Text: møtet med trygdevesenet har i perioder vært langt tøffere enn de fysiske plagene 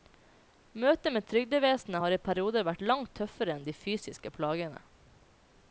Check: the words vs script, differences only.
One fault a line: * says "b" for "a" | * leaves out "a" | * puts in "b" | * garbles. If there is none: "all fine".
all fine